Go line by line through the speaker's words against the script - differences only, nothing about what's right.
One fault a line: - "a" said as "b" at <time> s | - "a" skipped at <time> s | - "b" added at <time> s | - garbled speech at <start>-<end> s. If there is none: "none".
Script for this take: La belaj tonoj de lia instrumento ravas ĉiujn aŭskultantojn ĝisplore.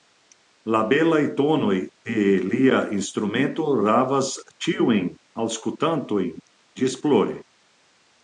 none